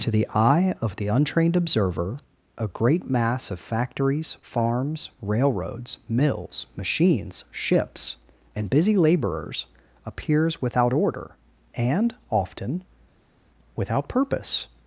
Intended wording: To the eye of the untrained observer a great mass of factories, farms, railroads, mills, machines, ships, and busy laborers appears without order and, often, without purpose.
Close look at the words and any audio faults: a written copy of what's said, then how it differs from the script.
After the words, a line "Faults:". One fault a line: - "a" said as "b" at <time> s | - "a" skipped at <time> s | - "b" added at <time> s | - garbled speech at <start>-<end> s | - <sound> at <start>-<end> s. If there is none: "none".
To the eye of the untrained observer a great mass of factories, farms, railroads, mills, machines, ships, and busy laborers appears without order and, often, without purpose.
Faults:
none